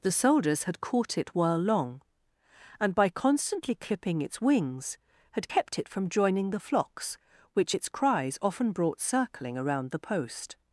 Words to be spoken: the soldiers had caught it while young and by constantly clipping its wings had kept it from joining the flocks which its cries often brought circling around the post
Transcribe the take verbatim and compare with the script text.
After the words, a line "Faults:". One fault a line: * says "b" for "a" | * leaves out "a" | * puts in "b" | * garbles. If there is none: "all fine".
the soldiers had caught it while long and by constantly clipping its wings had kept it from joining the flocks which its cries often brought circling around the post
Faults:
* says "long" for "young"